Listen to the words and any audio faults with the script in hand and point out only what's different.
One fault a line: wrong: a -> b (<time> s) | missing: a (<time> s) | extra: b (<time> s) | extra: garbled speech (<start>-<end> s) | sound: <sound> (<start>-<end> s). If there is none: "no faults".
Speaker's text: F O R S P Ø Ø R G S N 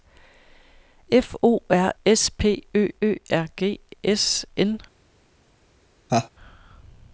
sound: laugh (6.1-6.3 s)